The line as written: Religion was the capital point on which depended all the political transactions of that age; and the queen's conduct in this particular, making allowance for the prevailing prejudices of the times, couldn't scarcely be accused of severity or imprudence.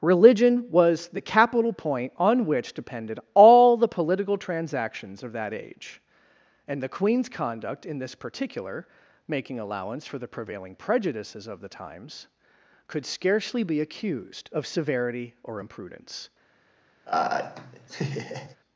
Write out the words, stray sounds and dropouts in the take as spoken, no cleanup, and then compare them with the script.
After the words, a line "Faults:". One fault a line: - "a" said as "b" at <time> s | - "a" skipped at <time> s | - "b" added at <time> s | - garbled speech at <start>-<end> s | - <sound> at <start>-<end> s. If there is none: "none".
Religion was the capital point on which depended all the political transactions of that age; and the queen's conduct in this particular, making allowance for the prevailing prejudices of the times, could scarcely be accused of severity or imprudence.
Faults:
- "couldn't" said as "could" at 12.9 s
- laugh at 17.1-18.6 s